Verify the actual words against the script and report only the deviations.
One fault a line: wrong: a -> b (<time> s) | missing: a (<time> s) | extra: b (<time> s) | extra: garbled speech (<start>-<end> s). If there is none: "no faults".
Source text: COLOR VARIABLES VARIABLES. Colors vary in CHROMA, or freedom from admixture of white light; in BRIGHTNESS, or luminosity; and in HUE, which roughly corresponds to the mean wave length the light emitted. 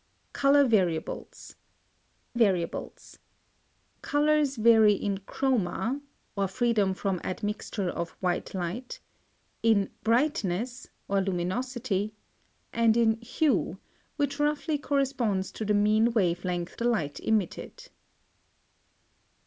no faults